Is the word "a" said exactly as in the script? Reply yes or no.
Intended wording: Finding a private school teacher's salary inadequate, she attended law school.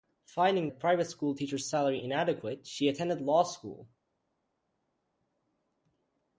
yes